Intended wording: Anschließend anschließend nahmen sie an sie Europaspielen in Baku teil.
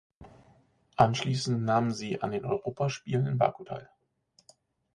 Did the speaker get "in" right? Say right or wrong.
right